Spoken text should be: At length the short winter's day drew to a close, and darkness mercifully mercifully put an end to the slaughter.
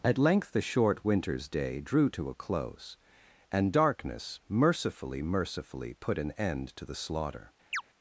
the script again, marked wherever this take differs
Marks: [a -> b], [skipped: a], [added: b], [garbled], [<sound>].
At length the short winter's day drew to a close, and darkness mercifully mercifully put an end to the slaughter. [chirp]